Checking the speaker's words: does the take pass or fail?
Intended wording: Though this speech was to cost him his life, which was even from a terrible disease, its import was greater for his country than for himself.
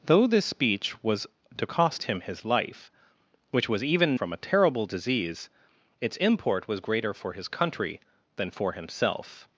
pass